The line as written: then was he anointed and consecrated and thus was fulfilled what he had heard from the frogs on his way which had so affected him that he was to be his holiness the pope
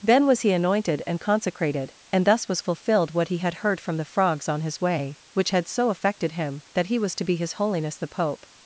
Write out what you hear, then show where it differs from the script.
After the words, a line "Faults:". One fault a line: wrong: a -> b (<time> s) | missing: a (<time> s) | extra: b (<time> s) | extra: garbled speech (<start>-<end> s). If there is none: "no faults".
then was he anointed and consecrated and thus was fulfilled what he had heard from the frogs on his way which had so affected him that he was to be his holiness the pope
Faults:
no faults